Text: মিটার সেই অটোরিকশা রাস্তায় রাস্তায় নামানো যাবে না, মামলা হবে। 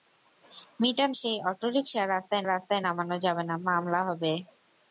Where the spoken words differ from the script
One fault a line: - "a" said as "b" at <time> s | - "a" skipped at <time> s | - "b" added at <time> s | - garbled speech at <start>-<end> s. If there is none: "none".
none